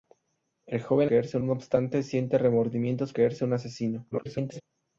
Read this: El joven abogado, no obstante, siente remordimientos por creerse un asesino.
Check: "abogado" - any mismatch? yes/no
yes